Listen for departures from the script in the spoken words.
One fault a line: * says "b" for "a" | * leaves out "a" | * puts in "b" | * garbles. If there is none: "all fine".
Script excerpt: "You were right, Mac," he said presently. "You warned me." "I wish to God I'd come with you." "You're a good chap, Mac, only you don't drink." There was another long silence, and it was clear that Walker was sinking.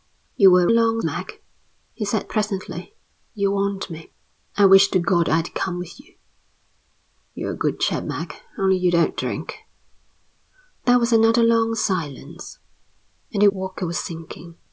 * says "long" for "right"
* leaves out "was clear that"